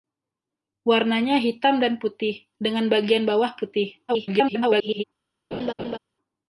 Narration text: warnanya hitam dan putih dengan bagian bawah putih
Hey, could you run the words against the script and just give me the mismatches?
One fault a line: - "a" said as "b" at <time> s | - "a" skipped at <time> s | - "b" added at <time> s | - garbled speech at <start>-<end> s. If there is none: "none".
- garbled speech at 4.1-5.0 s